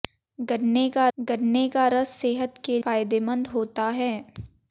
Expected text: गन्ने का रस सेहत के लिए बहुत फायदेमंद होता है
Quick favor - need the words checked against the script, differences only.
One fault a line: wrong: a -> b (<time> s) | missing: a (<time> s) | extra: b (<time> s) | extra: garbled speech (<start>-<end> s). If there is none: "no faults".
extra: गन्ने का (1.2 s)
missing: लिए बहुत (2.8 s)